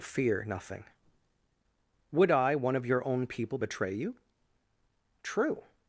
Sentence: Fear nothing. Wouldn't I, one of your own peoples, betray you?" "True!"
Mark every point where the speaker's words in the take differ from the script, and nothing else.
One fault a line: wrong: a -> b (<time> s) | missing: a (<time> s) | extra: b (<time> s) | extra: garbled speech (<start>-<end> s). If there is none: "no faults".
wrong: Wouldn't -> Would (2.1 s)
wrong: peoples -> people (3.3 s)